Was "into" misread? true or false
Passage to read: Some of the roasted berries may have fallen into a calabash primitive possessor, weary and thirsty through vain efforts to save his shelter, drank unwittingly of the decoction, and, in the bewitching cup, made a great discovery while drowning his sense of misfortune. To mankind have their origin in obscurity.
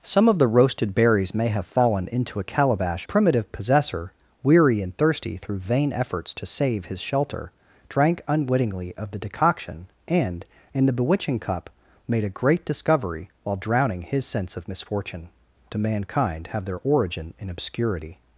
false